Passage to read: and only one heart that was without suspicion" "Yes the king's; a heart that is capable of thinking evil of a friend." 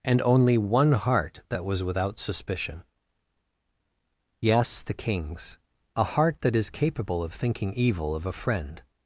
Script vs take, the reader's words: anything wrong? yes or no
no